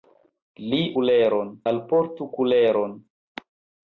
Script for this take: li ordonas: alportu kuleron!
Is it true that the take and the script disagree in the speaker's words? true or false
true